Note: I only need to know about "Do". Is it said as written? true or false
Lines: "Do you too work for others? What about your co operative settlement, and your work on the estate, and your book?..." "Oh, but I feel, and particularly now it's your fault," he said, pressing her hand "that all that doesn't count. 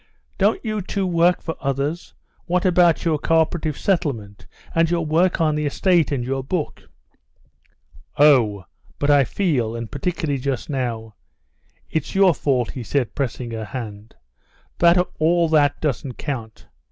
false